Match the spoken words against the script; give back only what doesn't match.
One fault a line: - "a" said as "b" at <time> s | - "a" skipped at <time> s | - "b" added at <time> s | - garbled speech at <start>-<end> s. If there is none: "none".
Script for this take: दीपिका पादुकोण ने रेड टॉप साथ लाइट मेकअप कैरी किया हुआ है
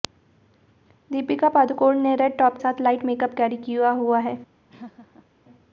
none